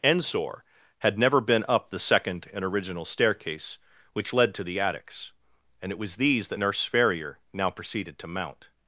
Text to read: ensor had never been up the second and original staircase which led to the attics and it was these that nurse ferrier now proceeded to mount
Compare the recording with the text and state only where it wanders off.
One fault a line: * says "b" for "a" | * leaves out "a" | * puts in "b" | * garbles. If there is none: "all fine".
all fine